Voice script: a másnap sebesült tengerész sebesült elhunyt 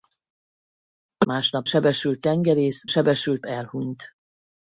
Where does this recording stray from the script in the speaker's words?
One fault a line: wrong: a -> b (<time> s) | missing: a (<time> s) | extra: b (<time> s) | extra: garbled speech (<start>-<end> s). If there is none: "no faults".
no faults